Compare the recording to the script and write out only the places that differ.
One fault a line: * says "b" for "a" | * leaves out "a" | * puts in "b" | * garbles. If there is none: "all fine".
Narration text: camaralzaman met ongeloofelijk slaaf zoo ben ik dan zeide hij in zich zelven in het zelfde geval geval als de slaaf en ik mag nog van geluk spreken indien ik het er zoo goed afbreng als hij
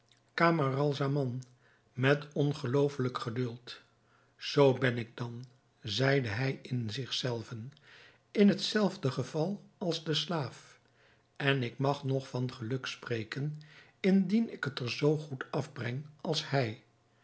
* says "geduld" for "slaaf"
* leaves out "geval"